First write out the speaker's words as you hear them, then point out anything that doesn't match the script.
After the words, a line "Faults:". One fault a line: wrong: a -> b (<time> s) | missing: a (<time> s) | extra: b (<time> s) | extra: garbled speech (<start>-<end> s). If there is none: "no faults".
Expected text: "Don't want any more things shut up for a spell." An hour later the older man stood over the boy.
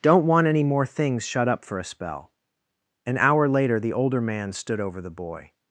"Don't want any more things shut up for a spell." An hour later the older man stood over the boy.
Faults:
no faults